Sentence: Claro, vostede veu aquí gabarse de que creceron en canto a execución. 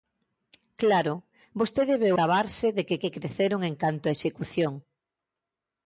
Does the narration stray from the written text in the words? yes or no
yes